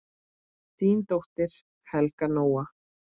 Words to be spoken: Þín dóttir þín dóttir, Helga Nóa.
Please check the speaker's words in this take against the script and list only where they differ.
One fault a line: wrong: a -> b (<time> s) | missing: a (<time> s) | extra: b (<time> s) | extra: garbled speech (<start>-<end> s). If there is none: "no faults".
missing: þín dóttir (1.5 s)